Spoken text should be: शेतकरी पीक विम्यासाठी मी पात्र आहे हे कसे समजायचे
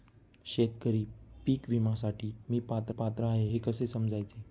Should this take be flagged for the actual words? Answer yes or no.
yes